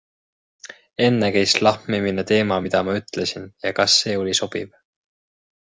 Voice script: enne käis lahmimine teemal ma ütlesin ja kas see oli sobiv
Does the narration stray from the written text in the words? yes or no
yes